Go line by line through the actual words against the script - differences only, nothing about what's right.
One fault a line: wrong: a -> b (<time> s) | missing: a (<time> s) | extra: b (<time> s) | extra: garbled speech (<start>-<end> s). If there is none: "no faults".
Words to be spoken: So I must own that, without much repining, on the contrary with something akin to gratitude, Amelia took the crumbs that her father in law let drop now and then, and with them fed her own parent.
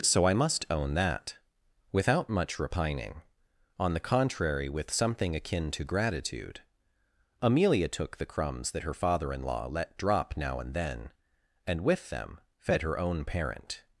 no faults